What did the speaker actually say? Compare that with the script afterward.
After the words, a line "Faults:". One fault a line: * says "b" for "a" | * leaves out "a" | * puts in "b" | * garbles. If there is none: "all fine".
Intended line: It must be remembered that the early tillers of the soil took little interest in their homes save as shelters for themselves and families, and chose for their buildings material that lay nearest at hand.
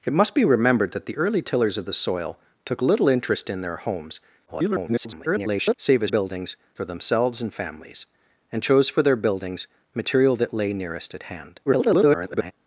It must be remembered that the early tillers of the soil took little interest in their homes [garbled] save as buildings for themselves and families, and chose for their buildings material that lay nearest at hand. [garbled]
Faults:
* garbles
* says "buildings" for "shelters"
* garbles